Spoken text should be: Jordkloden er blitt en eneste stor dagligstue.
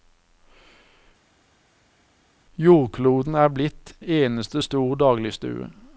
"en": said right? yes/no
no